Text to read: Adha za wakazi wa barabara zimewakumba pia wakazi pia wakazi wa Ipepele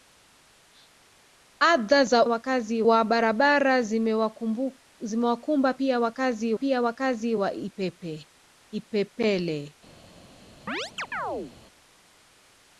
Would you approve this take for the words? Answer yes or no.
yes